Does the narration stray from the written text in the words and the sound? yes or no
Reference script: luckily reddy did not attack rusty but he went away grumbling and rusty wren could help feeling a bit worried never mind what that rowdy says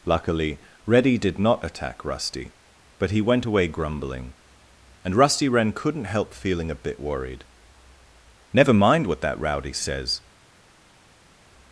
yes